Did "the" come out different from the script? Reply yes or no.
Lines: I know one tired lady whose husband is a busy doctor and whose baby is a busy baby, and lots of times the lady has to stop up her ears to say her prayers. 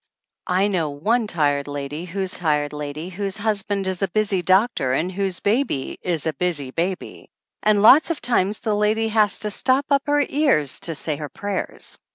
no